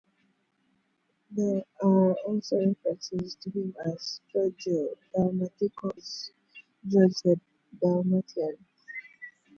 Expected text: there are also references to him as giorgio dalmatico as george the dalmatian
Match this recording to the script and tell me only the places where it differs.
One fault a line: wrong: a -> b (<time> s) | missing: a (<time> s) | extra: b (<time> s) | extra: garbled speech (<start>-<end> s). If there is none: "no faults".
no faults